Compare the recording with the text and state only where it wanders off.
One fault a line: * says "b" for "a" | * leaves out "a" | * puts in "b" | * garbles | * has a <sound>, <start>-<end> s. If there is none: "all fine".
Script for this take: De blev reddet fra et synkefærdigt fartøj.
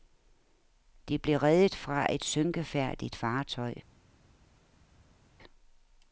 all fine